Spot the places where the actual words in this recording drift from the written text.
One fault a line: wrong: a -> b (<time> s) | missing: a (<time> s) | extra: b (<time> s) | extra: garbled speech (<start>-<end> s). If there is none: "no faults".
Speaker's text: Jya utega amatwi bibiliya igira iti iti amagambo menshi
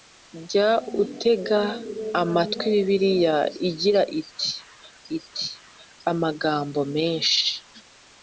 no faults